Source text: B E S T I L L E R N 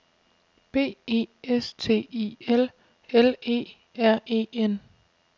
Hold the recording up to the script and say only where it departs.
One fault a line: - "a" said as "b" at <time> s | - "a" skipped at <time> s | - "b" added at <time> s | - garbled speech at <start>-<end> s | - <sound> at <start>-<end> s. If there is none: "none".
- "E" added at 4.2 s